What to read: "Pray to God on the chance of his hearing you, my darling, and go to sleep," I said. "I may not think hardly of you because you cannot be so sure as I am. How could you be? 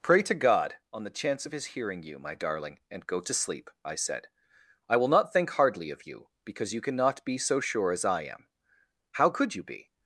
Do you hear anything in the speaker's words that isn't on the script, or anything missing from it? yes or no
yes